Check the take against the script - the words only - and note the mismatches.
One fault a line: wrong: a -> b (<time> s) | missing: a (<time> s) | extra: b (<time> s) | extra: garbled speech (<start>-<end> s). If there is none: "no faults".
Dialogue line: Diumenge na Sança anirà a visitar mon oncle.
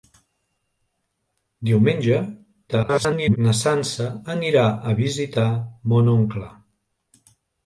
extra: garbled speech (2.7-3.4 s)